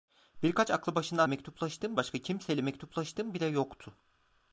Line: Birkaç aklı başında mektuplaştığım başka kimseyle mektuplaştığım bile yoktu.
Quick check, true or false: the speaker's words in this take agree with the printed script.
true